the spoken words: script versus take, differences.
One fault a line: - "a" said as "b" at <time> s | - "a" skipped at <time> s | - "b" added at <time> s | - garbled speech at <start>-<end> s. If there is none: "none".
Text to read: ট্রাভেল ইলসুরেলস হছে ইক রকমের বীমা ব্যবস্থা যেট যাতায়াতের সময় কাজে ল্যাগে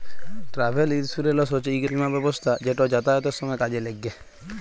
- "রকমের" skipped at 1.8 s